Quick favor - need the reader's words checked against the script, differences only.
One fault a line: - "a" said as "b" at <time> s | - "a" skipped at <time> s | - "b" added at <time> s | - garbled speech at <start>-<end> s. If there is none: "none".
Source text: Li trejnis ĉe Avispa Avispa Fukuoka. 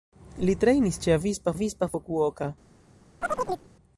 none